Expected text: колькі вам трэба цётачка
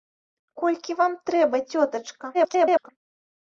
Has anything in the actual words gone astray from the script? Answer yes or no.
yes